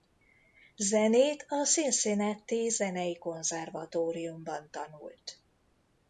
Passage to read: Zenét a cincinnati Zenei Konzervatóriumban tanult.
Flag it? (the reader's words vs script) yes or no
no